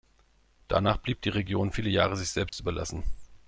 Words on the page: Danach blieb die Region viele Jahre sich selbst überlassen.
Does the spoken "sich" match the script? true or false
true